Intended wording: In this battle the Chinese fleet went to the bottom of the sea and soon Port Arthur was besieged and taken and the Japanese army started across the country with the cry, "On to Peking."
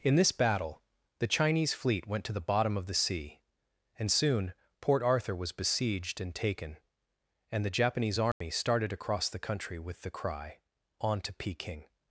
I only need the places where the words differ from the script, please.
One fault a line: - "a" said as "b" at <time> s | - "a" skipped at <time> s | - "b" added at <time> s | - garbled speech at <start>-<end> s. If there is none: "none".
none